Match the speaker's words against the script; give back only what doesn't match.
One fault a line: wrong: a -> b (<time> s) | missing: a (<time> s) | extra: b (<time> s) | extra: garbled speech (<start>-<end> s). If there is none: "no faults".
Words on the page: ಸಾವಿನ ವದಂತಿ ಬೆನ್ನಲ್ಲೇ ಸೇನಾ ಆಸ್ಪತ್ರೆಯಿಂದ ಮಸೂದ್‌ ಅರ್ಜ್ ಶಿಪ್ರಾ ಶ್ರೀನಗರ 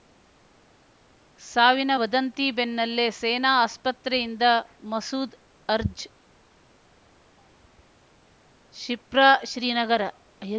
no faults